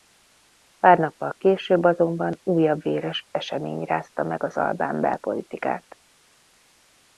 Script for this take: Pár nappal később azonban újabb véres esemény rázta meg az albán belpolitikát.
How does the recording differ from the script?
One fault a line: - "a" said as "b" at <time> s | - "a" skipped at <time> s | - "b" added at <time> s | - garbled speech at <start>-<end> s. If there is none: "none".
none